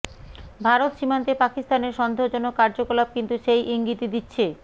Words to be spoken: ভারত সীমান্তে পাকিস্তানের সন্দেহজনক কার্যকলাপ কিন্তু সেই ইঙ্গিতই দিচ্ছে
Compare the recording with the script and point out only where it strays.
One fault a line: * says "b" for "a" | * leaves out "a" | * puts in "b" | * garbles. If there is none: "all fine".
all fine